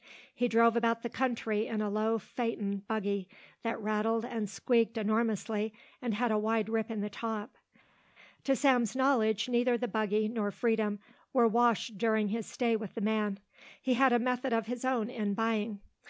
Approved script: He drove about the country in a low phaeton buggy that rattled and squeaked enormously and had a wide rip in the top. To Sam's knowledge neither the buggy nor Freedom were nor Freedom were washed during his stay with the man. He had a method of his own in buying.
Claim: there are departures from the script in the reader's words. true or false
true